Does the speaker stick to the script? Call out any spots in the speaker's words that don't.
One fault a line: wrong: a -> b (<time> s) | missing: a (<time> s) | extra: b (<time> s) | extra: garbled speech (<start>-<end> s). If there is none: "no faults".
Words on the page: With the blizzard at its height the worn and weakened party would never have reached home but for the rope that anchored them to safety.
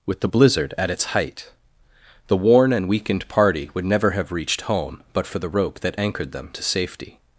no faults